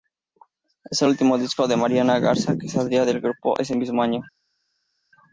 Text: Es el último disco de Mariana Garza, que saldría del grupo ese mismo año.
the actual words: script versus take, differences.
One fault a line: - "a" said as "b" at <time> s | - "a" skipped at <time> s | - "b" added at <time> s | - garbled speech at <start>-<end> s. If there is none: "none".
none